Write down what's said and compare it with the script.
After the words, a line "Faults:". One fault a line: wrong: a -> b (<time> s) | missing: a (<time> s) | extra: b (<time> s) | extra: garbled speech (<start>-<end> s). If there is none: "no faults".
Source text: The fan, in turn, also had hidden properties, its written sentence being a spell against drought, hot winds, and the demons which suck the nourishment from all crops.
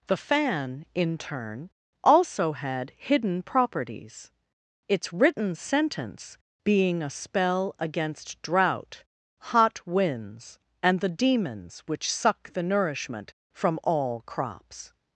The fan, in turn, also had hidden properties, its written sentence being a spell against drought, hot winds, and the demons which suck the nourishment from all crops.
Faults:
no faults